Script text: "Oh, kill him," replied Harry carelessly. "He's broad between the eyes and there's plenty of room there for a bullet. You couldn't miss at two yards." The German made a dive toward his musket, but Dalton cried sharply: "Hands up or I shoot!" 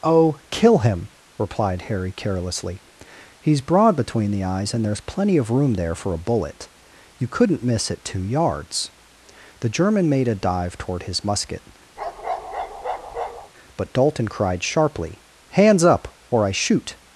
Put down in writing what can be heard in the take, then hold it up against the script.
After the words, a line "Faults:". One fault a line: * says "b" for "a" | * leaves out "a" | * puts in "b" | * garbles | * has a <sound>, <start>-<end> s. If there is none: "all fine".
"Oh, kill him," replied Harry carelessly. "He's broad between the eyes and there's plenty of room there for a bullet. You couldn't miss at two yards." The German made a dive toward his musket, but Dalton cried sharply: "Hands up or I shoot!"
Faults:
* has a bark, 12.0-13.5 s